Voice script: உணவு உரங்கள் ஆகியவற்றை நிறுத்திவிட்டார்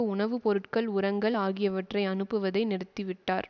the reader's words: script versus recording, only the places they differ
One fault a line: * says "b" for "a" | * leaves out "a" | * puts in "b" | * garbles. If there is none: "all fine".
* puts in "பொருட்கள்"
* puts in "அனுப்புவதை"